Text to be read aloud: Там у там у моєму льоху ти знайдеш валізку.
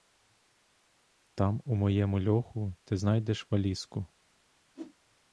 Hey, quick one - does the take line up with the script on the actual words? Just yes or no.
no